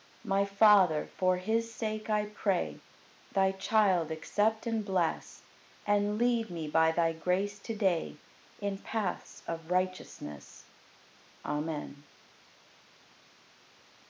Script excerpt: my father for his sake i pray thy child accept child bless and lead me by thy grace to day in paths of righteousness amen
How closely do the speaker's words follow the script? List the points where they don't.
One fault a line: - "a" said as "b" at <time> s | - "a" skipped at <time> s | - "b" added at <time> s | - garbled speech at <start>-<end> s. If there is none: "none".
- "child" said as "and" at 4.7 s